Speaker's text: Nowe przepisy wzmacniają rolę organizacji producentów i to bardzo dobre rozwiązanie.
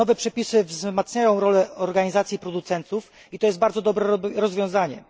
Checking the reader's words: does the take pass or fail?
fail